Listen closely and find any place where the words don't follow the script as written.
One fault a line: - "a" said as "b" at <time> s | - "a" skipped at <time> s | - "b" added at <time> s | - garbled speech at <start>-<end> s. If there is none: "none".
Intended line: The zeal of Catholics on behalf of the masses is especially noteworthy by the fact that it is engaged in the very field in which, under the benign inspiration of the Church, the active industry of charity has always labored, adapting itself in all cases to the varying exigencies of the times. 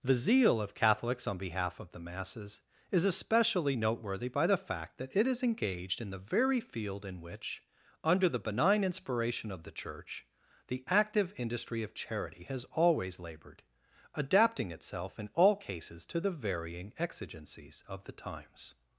none